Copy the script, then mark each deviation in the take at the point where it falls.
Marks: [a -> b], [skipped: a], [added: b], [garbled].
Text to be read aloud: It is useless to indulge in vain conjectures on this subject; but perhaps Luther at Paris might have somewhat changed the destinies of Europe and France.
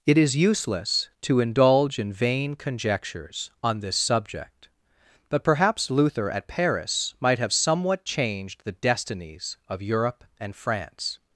It is useless to indulge in vain conjectures on this subject; but perhaps Luther at Paris might have somewhat changed the destinies of Europe and France.